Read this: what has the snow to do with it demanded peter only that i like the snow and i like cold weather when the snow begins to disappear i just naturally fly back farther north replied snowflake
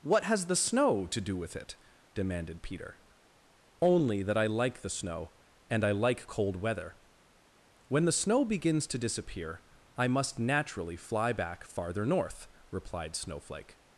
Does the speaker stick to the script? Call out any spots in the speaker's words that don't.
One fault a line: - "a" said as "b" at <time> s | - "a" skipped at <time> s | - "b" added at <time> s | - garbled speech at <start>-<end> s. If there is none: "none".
- "just" said as "must" at 10.1 s